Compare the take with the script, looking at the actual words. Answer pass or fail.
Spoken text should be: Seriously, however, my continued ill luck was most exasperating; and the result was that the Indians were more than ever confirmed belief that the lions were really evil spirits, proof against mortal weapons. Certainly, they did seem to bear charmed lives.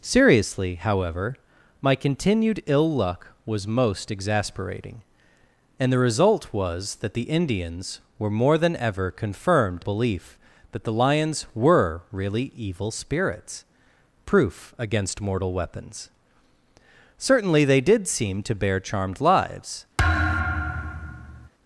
pass